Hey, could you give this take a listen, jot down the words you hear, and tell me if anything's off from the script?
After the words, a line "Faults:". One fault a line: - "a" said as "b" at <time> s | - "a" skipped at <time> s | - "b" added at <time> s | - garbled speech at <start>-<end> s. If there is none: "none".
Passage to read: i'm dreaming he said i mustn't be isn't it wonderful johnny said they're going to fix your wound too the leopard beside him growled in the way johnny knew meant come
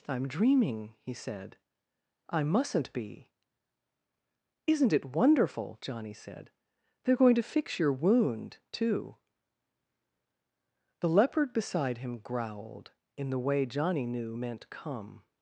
i'm dreaming he said i mustn't be isn't it wonderful johnny said they're going to fix your wound too the leopard beside him growled in the way johnny knew meant come
Faults:
none